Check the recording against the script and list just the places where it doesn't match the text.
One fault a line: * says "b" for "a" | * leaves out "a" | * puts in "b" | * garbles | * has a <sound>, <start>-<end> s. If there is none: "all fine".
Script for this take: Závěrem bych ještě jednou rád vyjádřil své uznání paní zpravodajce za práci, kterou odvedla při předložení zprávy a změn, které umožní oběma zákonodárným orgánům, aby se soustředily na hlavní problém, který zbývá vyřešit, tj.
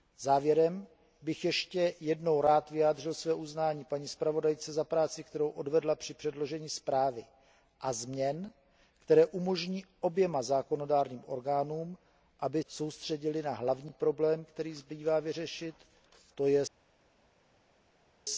* leaves out "se"